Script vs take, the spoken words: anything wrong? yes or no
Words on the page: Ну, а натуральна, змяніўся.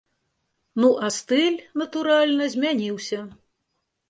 yes